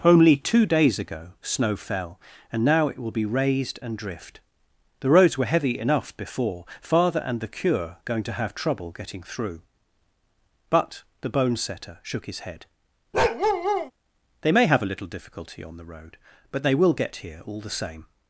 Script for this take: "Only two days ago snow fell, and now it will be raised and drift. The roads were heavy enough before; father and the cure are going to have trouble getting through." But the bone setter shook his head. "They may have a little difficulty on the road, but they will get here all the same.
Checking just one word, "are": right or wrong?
wrong